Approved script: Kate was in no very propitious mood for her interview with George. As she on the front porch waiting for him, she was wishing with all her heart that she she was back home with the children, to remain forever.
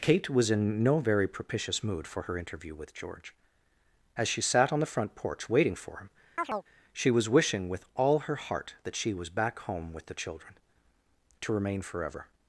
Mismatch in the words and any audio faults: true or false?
true